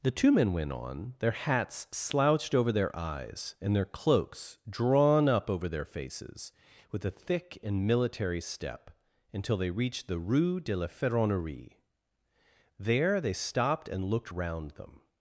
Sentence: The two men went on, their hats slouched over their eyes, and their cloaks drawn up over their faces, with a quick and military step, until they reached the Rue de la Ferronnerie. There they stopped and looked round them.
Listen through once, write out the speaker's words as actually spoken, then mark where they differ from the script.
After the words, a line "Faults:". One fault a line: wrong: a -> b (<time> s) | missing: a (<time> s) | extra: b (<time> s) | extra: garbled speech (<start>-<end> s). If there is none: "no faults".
The two men went on, their hats slouched over their eyes, and their cloaks drawn up over their faces, with a thick and military step, until they reached the Rue de la Ferronnerie. There they stopped and looked round them.
Faults:
wrong: quick -> thick (7.1 s)